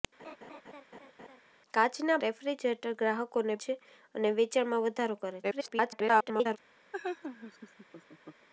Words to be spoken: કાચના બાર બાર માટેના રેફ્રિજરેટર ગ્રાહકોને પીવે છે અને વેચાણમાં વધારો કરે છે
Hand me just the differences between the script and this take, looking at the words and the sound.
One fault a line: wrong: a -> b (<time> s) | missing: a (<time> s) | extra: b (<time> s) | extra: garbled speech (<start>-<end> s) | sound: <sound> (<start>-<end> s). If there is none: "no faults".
sound: laugh (0.2-1.4 s)
missing: બાર બાર માટેના (2.2 s)
missing: પીવે (3.6 s)
extra: garbled speech (5.4-6.6 s)
sound: laugh (6.9-8.5 s)